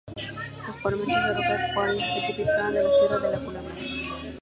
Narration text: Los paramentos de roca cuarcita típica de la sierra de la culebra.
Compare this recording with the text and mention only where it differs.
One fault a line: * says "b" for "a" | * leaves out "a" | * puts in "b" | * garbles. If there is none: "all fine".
all fine